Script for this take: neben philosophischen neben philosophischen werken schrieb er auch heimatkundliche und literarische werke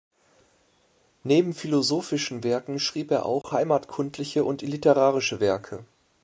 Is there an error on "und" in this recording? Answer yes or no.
no